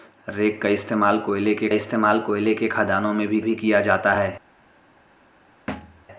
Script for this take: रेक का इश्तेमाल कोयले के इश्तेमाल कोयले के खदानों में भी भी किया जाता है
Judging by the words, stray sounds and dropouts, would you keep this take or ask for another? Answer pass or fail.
fail